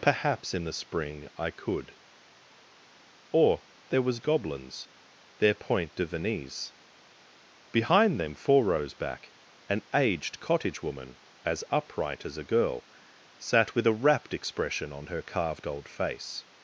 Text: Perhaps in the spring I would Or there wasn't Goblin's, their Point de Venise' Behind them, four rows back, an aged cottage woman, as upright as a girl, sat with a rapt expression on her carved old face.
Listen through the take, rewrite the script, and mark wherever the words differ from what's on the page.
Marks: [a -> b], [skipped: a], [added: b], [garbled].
Perhaps in the spring I [would -> could] Or there [wasn't -> was] Goblin's, their Point de Venise' Behind them, four rows back, an aged cottage woman, as upright as a girl, sat with a rapt expression on her carved old face.